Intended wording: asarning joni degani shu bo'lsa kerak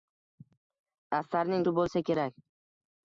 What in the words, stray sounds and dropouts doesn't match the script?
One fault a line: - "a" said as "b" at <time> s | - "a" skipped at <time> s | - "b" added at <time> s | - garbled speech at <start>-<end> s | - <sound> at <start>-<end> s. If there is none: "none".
- "joni degani" skipped at 1.7 s